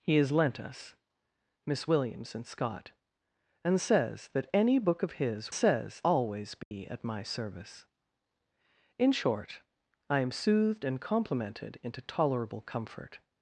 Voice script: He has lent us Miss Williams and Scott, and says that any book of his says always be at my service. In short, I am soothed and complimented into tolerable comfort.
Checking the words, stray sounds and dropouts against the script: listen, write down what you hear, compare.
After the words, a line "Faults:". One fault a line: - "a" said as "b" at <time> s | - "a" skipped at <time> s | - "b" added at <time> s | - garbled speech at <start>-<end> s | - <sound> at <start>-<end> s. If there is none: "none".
He has lent us Miss Williams and Scott, and says that any book of his says always be at my service. In short, I am soothed and complimented into tolerable comfort.
Faults:
- dropout at 6.6-6.7 s